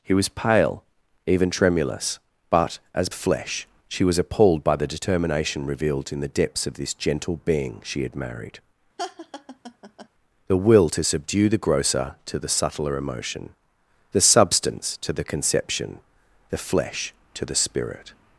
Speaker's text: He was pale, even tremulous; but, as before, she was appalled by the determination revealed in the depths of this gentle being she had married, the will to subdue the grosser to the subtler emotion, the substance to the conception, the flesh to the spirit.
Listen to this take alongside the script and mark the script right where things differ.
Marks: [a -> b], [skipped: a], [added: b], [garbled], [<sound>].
He was pale, even tremulous; but, as [before, -> flesh] she was appalled by the determination revealed in the depths of this gentle being she had married, [laugh] the will to subdue the grosser to the subtler emotion, the substance to the conception, the flesh to the spirit.